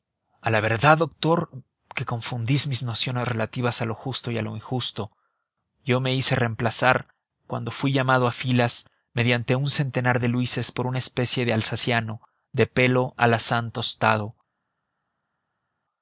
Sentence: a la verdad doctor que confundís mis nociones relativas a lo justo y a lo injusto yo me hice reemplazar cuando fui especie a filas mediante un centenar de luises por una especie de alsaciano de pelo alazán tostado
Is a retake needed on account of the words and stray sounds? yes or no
yes